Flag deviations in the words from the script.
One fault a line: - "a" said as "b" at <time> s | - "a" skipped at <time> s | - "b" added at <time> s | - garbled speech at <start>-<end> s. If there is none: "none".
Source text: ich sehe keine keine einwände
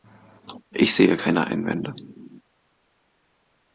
- "keine" skipped at 1.5 s